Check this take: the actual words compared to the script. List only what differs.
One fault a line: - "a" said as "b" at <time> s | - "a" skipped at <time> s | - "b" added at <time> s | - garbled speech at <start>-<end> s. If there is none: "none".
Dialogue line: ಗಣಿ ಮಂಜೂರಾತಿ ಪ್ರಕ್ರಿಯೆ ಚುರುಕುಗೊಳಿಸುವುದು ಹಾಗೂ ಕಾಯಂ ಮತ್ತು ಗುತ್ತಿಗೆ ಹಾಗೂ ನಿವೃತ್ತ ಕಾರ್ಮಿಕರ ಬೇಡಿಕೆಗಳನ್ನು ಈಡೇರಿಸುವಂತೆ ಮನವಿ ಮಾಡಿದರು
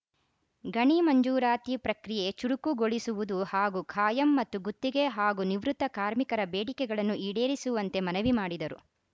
none